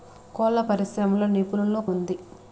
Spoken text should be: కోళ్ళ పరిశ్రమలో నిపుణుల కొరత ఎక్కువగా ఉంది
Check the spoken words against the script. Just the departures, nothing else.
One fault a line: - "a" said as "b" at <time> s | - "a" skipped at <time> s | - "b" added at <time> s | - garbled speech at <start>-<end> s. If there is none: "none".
- "కొరత ఎక్కువగా" skipped at 1.8 s